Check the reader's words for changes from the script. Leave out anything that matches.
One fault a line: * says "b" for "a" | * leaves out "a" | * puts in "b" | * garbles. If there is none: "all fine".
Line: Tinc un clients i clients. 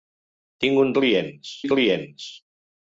all fine